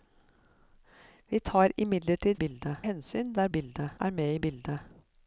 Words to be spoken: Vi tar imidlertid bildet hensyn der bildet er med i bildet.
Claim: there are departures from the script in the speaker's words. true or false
false